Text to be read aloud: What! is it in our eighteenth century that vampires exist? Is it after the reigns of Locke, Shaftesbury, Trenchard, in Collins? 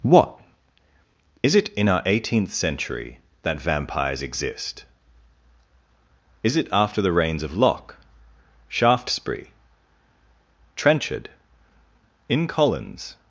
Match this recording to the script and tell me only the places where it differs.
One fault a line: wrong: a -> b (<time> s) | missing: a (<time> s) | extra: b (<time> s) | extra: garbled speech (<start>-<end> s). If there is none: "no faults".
no faults